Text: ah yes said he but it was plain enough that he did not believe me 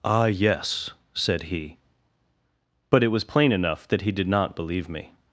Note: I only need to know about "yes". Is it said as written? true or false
true